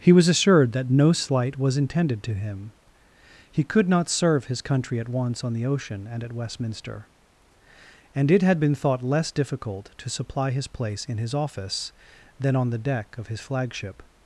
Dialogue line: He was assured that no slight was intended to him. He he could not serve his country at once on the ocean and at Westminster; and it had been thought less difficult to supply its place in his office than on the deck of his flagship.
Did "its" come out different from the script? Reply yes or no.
yes